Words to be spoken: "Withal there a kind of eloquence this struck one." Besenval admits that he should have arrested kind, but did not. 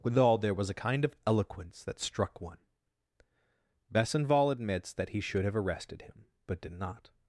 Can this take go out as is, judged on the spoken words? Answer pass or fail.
fail